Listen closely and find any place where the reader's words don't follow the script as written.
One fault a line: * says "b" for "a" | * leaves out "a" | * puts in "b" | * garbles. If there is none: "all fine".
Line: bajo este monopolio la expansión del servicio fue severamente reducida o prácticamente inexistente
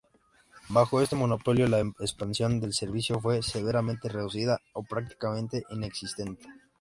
all fine